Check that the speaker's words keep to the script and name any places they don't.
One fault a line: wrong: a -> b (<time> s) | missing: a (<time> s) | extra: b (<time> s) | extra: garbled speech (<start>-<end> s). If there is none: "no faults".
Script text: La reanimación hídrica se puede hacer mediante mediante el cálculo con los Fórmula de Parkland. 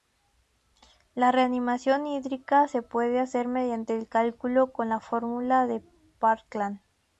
missing: mediante (4.0 s)
wrong: los -> la (4.9 s)